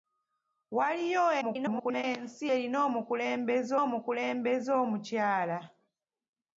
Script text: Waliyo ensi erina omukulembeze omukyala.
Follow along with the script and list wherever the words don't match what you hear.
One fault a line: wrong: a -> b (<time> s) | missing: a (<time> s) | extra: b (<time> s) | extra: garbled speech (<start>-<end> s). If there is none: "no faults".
extra: garbled speech (1.4-2.0 s)
extra: omukulembeze (3.8 s)